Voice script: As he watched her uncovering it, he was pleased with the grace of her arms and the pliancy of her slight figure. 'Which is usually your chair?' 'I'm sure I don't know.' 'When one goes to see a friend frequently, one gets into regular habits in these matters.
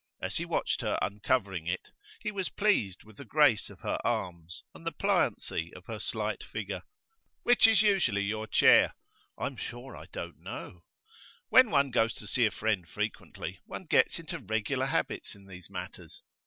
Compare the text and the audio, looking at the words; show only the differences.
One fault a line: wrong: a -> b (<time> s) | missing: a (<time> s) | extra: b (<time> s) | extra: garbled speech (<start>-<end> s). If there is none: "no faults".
no faults